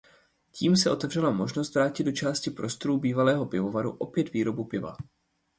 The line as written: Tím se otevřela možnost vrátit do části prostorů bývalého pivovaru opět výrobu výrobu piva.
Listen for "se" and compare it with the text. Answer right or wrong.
right